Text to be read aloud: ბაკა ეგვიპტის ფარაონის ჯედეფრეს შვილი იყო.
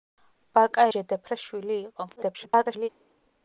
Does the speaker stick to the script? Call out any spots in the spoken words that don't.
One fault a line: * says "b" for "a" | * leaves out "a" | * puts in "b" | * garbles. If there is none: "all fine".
* leaves out "ეგვიპტის ფარაონის"
* garbles